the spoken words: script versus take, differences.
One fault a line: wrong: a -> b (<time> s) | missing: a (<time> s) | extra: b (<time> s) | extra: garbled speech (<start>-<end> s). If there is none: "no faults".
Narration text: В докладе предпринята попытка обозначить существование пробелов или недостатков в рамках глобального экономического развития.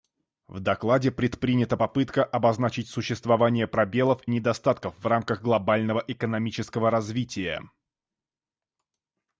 missing: или (4.2 s)